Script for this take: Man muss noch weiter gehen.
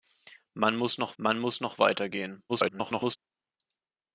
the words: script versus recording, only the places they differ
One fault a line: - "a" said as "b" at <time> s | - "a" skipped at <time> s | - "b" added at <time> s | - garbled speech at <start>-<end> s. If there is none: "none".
- "man muss noch" added at 1.2 s
- garbled speech at 2.5-3.2 s